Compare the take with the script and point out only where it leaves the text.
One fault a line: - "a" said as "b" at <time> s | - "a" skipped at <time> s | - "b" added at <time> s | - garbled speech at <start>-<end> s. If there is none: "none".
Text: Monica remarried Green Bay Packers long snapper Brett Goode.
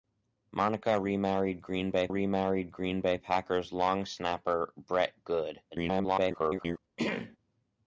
- "remarried Green Bay" added at 2.1 s
- garbled speech at 5.7-6.8 s